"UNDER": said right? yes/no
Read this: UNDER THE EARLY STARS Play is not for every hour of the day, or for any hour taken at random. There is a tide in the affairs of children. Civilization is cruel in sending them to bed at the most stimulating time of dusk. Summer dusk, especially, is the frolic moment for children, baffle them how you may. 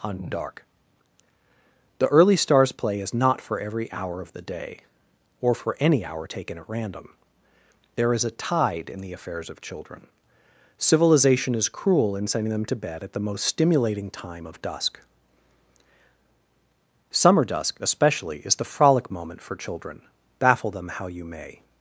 no